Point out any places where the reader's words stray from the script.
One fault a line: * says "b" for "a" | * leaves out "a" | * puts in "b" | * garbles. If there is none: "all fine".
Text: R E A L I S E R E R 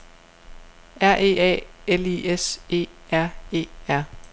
all fine